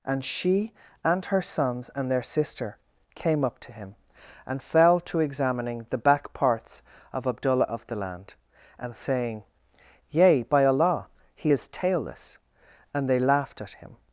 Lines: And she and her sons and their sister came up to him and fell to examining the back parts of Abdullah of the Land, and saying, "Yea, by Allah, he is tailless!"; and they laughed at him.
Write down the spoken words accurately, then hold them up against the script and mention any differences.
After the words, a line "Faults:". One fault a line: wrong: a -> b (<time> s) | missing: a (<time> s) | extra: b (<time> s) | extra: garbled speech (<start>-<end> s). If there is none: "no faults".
And she and her sons and their sister came up to him and fell to examining the back parts of Abdullah of the Land, and saying, "Yea, by Allah, he is tailless!"; and they laughed at him.
Faults:
no faults